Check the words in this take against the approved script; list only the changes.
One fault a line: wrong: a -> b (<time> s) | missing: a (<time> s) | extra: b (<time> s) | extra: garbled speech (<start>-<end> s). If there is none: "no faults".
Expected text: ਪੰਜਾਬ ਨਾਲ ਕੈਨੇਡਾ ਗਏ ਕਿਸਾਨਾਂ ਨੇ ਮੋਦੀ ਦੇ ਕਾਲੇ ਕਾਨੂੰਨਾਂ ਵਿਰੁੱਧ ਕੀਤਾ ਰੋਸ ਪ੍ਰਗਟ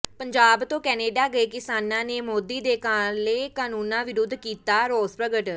wrong: ਨਾਲ -> ਤੋਂ (0.6 s)